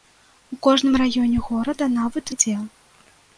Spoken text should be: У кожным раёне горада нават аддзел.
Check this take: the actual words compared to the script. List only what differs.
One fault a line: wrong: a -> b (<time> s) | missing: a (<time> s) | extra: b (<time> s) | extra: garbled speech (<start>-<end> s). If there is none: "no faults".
no faults